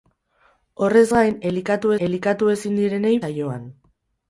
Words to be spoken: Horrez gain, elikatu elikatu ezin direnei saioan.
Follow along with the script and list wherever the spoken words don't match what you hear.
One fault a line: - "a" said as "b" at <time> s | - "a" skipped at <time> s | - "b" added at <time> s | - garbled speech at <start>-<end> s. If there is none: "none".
none